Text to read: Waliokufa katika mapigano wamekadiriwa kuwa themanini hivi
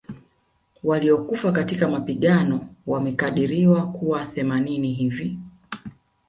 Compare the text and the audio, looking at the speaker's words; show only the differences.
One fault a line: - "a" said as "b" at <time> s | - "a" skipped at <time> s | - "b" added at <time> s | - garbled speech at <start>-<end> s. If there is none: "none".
none